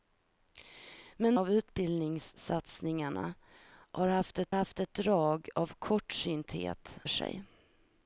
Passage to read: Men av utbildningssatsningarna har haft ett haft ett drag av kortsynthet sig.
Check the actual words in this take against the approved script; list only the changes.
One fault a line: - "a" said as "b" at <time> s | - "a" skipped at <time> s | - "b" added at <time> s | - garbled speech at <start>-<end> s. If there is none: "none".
none